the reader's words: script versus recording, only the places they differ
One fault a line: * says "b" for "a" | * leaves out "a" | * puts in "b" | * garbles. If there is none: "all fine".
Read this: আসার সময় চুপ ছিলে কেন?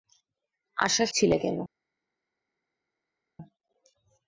* leaves out "সময় চুপ"